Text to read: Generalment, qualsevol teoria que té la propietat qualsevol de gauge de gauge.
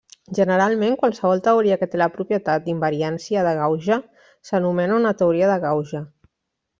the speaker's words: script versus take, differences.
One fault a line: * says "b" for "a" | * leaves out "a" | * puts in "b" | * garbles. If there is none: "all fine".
* says "d'invariància" for "qualsevol"
* puts in "s'anomena una teoria"